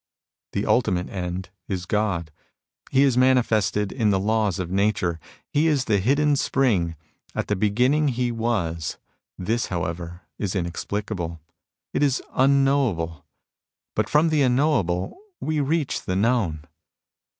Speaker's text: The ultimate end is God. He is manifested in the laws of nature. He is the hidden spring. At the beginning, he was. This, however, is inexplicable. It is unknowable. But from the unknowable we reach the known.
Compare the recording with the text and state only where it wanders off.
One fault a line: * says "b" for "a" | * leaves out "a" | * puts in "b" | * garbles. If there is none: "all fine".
all fine